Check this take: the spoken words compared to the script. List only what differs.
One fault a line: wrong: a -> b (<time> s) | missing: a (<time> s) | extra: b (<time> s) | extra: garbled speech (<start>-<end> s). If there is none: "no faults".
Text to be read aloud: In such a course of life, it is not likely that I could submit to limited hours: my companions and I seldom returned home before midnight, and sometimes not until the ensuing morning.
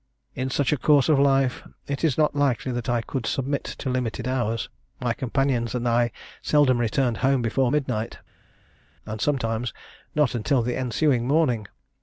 no faults